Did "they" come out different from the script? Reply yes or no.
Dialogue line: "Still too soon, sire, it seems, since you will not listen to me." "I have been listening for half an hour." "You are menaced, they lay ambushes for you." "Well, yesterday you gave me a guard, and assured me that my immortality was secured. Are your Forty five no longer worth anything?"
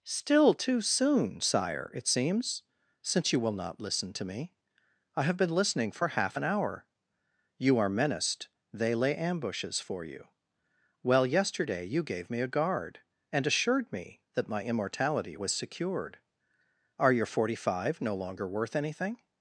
no